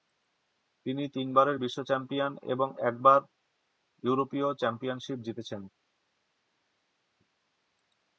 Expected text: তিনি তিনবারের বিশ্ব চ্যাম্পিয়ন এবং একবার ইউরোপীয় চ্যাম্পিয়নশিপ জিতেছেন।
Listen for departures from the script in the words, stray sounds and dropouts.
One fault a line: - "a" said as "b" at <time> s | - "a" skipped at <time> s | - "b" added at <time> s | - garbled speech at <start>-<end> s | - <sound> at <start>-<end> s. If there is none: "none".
none